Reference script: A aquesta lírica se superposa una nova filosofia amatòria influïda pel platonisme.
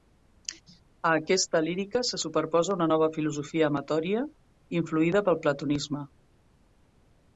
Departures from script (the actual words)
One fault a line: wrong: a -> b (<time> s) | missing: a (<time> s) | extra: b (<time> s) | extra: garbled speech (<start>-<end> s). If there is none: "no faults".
no faults